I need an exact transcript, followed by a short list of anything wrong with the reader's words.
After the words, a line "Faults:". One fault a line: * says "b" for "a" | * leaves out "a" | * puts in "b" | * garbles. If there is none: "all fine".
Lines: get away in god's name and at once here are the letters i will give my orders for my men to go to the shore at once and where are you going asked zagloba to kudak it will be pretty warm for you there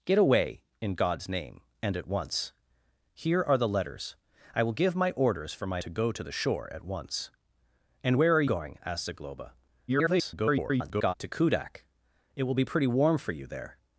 get away in god's name and at once here are the letters i will give my orders for my to go to the shore at once and where are going asked zagloba [garbled] to kudak it will be pretty warm for you there
Faults:
* leaves out "men"
* leaves out "you"
* garbles